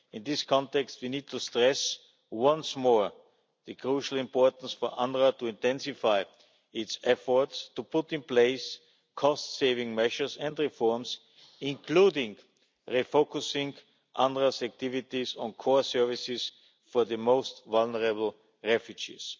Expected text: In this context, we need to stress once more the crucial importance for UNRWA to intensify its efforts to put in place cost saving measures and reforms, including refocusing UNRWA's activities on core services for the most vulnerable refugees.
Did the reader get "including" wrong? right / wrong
right